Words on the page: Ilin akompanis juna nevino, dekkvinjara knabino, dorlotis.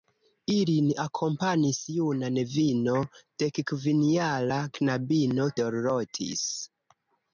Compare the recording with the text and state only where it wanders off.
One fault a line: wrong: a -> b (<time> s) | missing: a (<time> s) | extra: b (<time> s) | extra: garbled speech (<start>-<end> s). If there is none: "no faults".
no faults